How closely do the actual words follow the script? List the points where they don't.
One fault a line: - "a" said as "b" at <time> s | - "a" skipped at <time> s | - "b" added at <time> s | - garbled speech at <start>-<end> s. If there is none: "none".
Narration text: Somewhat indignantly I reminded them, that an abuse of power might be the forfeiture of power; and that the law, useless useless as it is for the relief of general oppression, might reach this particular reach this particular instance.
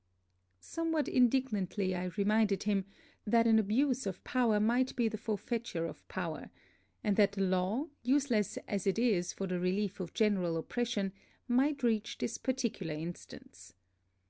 - "them" said as "him" at 2.6 s
- "useless" skipped at 8.6 s
- "reach this particular" skipped at 12.9 s